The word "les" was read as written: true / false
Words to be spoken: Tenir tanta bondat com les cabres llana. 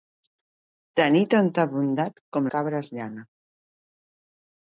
false